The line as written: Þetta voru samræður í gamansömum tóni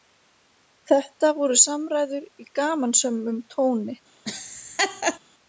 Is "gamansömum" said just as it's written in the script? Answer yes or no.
yes